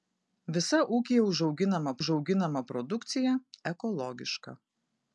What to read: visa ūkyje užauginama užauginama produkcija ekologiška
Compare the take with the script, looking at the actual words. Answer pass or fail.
pass